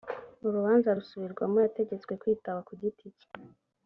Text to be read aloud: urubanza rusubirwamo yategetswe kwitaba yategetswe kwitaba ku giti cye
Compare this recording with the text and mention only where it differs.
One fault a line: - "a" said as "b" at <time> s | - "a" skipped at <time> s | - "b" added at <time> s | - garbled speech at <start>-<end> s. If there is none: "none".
- "yategetswe kwitaba" skipped at 2.6 s